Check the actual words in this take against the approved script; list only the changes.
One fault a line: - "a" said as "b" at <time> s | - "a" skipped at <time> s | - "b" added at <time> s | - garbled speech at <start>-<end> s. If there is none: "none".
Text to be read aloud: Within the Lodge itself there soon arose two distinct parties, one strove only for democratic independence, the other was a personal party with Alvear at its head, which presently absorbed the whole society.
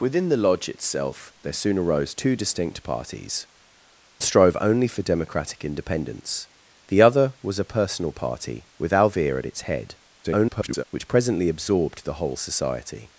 - "one" skipped at 3.5 s
- garbled speech at 10.2-10.8 s